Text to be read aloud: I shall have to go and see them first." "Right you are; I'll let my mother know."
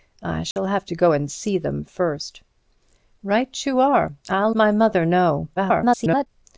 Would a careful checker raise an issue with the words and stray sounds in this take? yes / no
yes